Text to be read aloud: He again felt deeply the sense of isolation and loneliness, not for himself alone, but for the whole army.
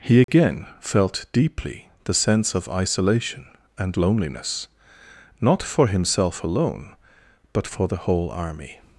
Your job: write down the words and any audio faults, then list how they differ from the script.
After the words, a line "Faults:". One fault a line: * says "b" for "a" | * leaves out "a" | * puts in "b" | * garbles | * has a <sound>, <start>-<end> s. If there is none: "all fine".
He again felt deeply the sense of isolation and loneliness, not for himself alone, but for the whole army.
Faults:
* has a dropout, 0.2-0.3 s